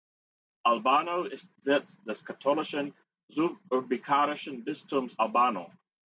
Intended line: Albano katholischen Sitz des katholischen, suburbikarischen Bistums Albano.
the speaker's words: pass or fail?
fail